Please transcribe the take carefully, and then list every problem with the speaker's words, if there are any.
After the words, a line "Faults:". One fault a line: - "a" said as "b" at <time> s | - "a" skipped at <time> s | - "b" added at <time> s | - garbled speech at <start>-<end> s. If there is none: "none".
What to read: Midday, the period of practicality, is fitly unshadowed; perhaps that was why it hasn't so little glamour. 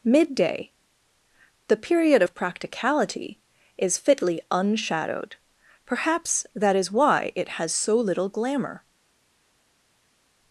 Midday, the period of practicality, is fitly unshadowed; perhaps that is why it has so little glamour.
Faults:
- "was" said as "is" at 6.8 s
- "hasn't" said as "has" at 7.6 s